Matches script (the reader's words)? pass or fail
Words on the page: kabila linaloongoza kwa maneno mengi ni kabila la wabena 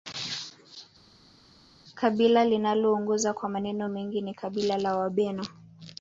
pass